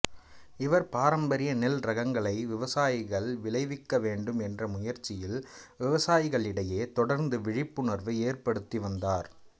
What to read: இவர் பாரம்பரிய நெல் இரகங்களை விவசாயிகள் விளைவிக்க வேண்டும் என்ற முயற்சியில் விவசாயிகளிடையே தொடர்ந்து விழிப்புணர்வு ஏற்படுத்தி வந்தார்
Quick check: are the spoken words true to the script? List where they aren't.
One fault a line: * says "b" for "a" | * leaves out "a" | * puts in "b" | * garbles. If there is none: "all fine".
all fine